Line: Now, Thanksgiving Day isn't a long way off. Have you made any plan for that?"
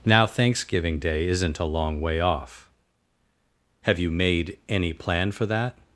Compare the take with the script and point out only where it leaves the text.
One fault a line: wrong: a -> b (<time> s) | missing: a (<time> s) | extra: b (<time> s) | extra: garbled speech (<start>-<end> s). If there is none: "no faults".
no faults